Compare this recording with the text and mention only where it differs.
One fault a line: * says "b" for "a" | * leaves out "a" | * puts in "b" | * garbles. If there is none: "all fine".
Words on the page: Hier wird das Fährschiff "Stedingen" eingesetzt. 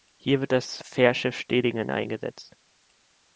all fine